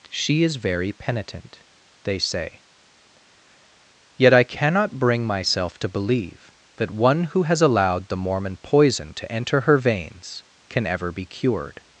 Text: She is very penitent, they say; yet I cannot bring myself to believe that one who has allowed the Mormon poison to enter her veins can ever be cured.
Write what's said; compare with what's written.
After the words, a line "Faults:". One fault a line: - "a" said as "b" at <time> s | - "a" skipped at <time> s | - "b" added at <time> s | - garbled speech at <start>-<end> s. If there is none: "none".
She is very penitent, they say; yet I cannot bring myself to believe that one who has allowed the Mormon poison to enter her veins can ever be cured.
Faults:
none